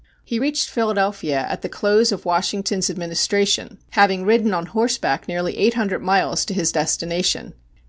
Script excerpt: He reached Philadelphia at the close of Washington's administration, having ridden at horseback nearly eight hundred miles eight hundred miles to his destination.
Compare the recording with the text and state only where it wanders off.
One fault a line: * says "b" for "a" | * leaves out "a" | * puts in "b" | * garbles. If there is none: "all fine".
* says "on" for "at"
* leaves out "eight hundred miles"